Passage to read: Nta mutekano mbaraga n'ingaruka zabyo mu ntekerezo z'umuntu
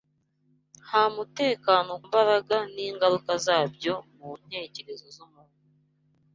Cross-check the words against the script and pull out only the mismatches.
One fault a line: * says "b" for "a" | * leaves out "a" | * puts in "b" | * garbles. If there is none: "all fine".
all fine